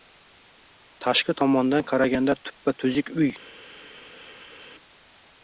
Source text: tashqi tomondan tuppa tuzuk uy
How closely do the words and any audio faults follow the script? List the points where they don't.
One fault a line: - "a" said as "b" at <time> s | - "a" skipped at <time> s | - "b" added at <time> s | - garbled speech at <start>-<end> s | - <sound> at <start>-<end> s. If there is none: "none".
- "qaraganda" added at 1.9 s